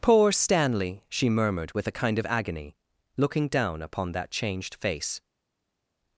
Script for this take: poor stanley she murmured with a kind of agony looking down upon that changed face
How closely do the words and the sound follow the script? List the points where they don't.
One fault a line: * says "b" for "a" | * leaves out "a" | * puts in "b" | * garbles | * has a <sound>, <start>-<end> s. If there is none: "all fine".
all fine